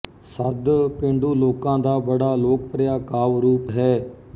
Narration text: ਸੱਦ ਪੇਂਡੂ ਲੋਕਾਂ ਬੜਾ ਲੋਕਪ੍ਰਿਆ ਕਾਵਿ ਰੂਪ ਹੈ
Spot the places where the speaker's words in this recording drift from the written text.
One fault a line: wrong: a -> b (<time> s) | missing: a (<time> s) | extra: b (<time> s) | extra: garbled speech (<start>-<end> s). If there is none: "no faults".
extra: ਦਾ (1.8 s)